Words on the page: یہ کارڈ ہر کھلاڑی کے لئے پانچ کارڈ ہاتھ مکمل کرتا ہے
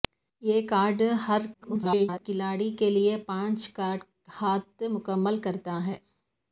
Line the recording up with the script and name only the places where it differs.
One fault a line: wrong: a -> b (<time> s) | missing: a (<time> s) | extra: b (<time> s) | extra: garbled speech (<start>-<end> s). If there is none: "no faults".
extra: garbled speech (1.5-2.2 s)